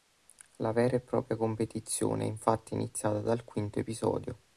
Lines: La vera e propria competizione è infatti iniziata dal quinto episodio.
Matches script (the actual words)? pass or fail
pass